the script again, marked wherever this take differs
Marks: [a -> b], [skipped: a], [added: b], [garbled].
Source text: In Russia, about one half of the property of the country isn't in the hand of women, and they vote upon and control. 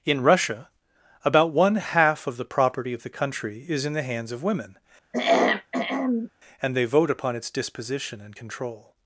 In Russia, about one half of the property of the country [isn't -> is] in the [hand -> hands] of women, and they vote upon [added: its disposition] and control.